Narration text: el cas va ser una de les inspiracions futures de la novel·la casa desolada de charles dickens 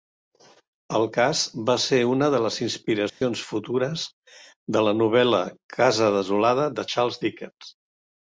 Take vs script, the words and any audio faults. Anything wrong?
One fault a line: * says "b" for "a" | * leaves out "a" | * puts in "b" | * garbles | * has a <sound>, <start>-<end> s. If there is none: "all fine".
* has a dropout, 3.1-3.2 s